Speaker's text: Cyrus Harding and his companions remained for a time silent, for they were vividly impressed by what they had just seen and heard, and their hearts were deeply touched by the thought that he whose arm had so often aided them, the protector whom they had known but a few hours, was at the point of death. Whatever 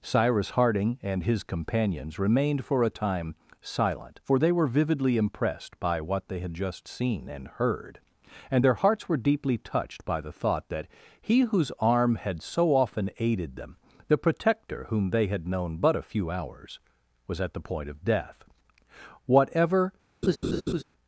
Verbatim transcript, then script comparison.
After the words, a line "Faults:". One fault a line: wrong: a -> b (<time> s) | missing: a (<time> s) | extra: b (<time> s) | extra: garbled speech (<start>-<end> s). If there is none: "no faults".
Cyrus Harding and his companions remained for a time silent, for they were vividly impressed by what they had just seen and heard, and their hearts were deeply touched by the thought that he whose arm had so often aided them, the protector whom they had known but a few hours, was at the point of death. Whatever
Faults:
no faults